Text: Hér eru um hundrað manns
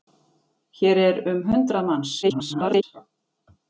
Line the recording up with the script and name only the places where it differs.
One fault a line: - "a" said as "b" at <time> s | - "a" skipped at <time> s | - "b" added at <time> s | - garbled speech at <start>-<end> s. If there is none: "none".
- garbled speech at 2.2-2.8 s